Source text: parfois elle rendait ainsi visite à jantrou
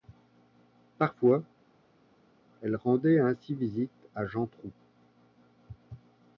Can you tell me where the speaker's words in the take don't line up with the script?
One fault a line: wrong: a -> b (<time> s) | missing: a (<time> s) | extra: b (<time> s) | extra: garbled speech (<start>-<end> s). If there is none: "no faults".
no faults